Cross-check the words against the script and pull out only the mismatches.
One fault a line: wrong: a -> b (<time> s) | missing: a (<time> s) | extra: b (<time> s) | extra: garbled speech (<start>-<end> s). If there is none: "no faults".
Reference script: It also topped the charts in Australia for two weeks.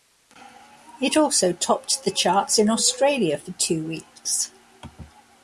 no faults